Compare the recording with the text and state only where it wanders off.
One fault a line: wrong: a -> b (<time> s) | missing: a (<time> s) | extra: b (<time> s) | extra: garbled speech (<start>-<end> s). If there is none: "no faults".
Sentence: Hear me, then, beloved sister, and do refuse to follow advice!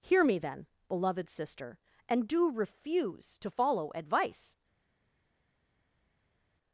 no faults